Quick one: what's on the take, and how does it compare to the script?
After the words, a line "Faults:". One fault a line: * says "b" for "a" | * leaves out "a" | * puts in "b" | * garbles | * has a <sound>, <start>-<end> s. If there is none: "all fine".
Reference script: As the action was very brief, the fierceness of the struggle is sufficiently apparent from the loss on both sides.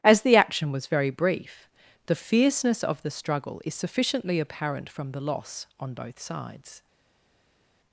As the action was very brief, the fierceness of the struggle is sufficiently apparent from the loss on both sides.
Faults:
all fine